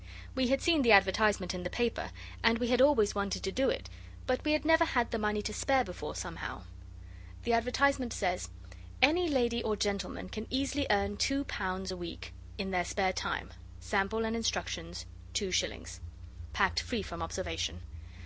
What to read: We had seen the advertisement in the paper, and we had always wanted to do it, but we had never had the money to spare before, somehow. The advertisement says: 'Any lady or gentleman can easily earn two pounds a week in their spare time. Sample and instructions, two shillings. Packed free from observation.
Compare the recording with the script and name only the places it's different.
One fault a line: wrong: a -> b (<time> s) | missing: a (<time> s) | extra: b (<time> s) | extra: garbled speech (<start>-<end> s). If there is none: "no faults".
no faults